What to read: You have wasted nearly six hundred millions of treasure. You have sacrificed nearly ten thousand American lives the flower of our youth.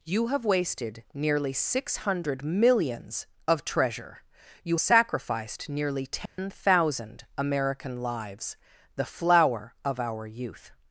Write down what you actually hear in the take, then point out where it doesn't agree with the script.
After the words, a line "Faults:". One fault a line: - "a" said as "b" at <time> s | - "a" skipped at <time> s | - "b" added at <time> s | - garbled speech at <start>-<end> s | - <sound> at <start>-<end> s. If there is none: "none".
You have wasted nearly six hundred millions of treasure. You sacrificed nearly ten thousand American lives the flower of our youth.
Faults:
- "have" skipped at 4.8 s
- dropout at 6.3-6.4 s